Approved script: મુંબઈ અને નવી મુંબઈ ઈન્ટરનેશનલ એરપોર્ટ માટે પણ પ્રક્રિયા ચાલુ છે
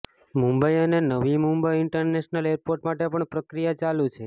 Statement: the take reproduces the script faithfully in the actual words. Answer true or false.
true